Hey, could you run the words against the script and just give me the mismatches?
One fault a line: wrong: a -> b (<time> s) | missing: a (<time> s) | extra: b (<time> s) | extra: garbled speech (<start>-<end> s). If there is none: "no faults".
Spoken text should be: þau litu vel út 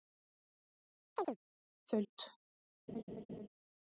missing: litu vel (2.0 s)